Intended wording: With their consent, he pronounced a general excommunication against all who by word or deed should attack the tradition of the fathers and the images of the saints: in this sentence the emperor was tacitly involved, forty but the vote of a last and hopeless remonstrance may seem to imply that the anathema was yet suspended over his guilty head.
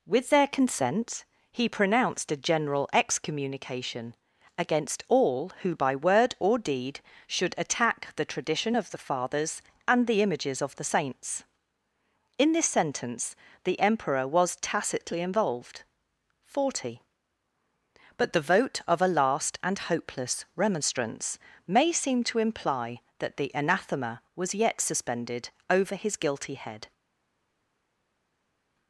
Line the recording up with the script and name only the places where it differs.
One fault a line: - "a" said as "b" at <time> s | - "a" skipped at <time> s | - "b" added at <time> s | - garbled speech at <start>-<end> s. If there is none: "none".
none